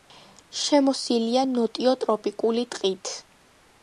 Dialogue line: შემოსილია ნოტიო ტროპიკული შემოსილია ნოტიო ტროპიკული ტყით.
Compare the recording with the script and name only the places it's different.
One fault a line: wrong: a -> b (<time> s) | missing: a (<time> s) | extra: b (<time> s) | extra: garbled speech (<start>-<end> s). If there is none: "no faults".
missing: შემოსილია ნოტიო ტროპიკული (2.7 s)